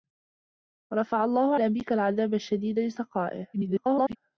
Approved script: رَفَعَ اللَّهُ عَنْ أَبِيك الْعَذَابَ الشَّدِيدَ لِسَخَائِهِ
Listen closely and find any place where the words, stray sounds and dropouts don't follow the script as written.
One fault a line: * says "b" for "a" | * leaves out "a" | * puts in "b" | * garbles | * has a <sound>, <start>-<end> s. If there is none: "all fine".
* leaves out "عَنْ"
* garbles